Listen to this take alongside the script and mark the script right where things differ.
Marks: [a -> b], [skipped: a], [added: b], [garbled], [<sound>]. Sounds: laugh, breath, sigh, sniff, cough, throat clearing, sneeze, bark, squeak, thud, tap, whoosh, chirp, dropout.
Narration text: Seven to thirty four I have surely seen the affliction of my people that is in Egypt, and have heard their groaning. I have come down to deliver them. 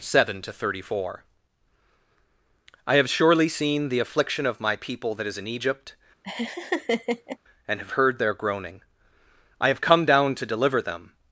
Seven to thirty four I have surely seen the affliction of my people that is in Egypt, [laugh] and have heard their groaning. I have come down to deliver them.